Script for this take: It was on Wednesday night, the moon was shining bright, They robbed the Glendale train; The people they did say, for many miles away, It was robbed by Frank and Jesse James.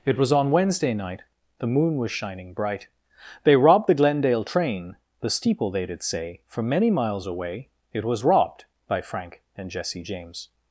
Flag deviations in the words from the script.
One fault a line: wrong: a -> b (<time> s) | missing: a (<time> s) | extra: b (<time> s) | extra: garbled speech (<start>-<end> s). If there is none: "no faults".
wrong: people -> steeple (5.3 s)